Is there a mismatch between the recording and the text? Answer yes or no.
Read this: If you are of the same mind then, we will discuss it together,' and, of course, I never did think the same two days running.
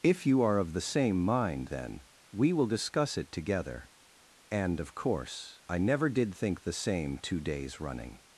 no